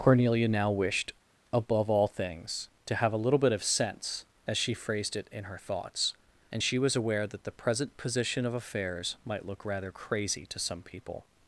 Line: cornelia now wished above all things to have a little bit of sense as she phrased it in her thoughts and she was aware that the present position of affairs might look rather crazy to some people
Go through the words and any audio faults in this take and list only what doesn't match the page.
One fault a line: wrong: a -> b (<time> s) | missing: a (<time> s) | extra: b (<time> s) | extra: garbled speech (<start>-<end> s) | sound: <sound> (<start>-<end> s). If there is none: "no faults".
no faults